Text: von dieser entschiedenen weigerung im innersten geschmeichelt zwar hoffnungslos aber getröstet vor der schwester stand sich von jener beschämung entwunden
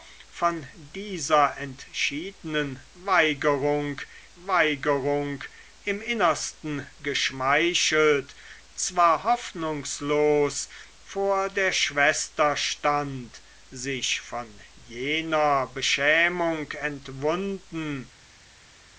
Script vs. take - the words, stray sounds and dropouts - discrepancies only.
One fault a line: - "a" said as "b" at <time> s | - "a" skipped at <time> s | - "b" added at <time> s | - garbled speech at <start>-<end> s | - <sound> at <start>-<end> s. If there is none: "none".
- "weigerung" added at 4.4 s
- "aber getröstet" skipped at 10.7 s